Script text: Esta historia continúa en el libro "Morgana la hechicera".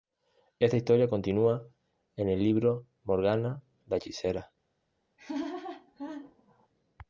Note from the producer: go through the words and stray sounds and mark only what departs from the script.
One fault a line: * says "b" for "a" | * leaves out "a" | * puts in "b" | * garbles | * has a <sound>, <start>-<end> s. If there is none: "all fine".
* has a laugh, 5.2-6.7 s